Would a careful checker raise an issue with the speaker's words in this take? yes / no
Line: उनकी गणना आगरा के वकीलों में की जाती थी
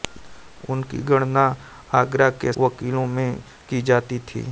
no